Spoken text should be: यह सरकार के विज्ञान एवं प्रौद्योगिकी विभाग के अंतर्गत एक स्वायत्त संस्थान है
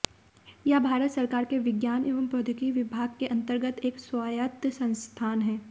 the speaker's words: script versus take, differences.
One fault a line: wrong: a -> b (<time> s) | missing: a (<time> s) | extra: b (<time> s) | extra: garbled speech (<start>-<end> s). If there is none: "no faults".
extra: भारत (0.8 s)